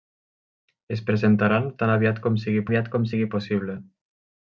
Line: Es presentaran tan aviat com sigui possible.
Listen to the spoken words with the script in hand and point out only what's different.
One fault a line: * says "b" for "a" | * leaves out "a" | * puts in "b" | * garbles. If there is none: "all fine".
* puts in "aviat com sigui"